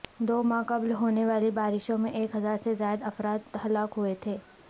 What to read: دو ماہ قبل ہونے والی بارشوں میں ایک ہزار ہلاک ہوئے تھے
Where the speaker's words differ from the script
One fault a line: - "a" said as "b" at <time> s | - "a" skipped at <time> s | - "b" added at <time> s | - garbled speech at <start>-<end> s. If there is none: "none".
- "سے زائد افراد" added at 2.6 s